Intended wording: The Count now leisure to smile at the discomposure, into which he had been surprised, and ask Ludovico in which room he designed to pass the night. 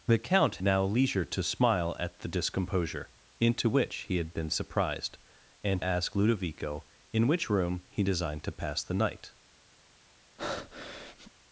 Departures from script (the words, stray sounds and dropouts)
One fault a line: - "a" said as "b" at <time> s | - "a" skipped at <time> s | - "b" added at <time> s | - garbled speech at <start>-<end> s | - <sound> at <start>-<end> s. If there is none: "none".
- breath at 10.4-11.3 s